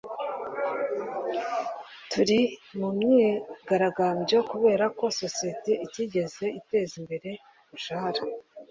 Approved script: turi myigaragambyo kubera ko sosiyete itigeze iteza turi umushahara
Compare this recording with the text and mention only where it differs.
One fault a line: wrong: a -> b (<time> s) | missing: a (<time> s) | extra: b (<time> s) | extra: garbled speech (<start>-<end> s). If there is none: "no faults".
extra: mu (2.8 s)
wrong: turi -> imbere (7.0 s)